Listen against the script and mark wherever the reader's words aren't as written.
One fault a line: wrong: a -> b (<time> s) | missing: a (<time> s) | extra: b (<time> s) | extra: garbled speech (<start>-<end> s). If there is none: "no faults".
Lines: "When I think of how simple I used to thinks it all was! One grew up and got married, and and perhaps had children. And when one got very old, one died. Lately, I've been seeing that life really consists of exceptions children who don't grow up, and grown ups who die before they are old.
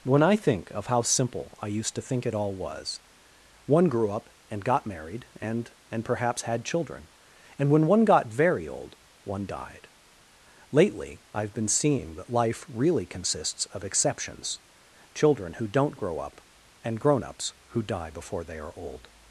wrong: thinks -> think (2.0 s)